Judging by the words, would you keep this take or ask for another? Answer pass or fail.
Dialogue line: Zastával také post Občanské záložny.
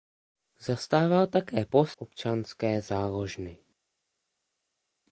pass